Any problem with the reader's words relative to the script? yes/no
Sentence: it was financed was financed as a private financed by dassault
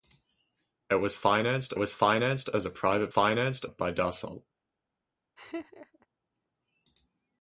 no